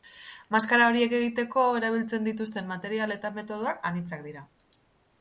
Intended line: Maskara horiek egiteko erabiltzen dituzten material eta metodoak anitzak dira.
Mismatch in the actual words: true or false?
false